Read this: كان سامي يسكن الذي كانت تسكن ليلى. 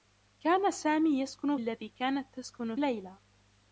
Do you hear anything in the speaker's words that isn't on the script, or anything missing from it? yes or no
no